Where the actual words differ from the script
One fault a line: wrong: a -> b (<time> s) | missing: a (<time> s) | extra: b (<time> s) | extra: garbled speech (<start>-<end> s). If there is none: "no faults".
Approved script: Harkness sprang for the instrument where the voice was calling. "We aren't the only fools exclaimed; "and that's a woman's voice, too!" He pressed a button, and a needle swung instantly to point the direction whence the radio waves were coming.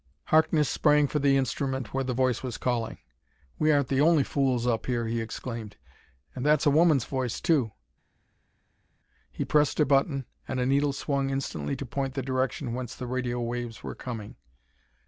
extra: up here he (4.7 s)